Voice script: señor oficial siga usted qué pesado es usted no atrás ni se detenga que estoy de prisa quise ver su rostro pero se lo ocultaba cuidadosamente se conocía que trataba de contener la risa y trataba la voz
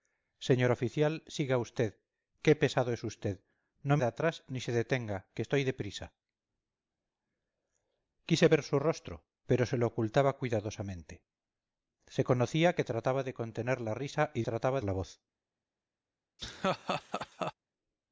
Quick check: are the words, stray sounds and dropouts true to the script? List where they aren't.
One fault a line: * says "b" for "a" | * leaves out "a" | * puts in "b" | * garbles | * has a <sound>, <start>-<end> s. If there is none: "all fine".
* has a laugh, 16.4-17.5 s